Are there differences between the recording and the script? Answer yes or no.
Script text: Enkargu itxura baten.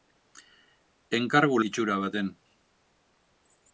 no